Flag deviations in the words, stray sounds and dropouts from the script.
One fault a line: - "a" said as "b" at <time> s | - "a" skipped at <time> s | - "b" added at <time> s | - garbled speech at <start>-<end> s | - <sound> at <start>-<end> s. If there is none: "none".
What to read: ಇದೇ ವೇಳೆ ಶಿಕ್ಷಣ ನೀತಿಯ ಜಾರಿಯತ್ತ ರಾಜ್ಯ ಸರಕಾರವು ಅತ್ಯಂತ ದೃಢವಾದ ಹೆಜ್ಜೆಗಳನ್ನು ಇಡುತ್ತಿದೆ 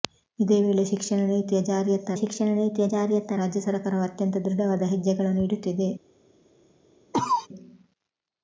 - "ಶಿಕ್ಷಣ ನೀತಿಯ ಜಾರಿಯತ್ತ" added at 2.2 s
- cough at 7.1-7.5 s